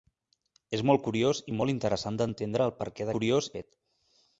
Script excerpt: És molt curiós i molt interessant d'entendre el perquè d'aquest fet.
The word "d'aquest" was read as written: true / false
false